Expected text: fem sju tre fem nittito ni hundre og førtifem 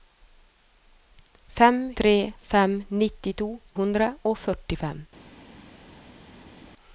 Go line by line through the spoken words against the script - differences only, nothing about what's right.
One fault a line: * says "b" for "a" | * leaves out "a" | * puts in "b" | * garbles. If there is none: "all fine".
* leaves out "sju"
* leaves out "ni"